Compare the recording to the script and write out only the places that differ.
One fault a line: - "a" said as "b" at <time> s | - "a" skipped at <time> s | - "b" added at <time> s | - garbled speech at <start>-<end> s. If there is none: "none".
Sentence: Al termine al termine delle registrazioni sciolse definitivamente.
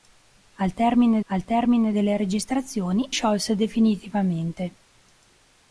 none